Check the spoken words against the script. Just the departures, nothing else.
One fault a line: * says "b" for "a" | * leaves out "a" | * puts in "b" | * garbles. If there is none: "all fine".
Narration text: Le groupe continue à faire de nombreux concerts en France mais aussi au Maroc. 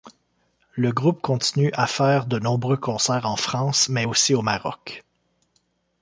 all fine